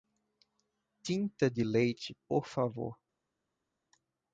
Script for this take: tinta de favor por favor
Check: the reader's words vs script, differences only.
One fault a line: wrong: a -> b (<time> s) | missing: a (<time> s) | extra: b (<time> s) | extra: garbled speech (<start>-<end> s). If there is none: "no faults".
wrong: favor -> leite (1.6 s)